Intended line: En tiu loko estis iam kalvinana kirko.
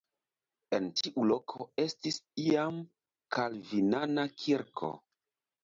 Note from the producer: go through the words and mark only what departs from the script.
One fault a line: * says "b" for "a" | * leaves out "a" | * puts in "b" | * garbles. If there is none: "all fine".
all fine